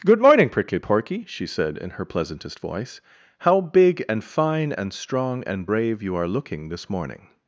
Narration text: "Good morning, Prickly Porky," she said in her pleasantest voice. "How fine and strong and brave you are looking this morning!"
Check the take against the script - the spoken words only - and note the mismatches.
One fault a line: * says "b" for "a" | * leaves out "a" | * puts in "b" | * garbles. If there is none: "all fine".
* puts in "big and"